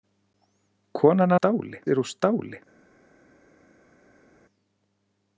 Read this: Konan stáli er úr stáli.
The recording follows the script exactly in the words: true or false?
true